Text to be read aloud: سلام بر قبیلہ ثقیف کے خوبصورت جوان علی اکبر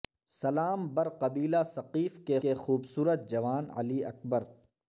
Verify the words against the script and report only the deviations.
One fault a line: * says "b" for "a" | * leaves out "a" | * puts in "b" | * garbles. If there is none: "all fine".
* puts in "کے"